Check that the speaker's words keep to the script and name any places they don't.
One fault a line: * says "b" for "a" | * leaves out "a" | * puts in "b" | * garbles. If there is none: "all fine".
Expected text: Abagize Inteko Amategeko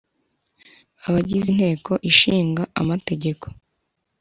* puts in "Ishinga"